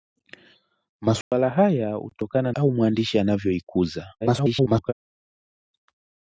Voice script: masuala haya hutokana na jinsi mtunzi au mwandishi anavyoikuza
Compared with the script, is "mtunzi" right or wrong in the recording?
wrong